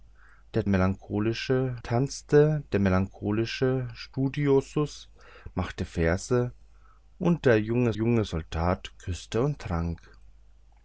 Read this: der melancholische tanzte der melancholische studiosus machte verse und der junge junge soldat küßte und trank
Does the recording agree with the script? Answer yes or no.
yes